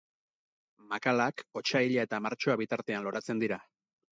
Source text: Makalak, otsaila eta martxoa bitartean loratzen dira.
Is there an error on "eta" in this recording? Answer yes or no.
no